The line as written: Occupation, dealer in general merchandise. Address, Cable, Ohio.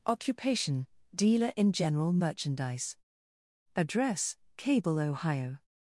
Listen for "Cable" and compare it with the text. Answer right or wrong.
right